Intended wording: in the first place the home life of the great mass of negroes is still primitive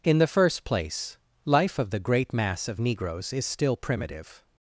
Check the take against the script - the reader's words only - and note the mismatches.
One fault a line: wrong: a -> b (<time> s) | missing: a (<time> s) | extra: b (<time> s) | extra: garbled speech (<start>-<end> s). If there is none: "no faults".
missing: the home (1.2 s)